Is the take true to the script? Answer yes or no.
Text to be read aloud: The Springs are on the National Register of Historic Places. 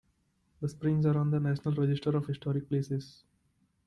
yes